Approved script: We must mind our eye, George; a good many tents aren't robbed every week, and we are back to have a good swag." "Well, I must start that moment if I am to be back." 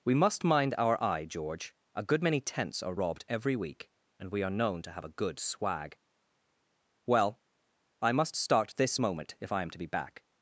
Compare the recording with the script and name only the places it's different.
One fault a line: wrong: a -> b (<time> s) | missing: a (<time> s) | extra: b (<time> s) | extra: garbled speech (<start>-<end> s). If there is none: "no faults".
wrong: aren't -> are (2.8 s)
wrong: back -> known (4.6 s)
wrong: that -> this (8.8 s)